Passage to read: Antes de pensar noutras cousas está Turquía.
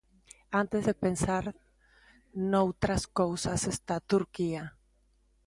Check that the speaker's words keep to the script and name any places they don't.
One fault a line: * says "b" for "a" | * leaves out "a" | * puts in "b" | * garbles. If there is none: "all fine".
all fine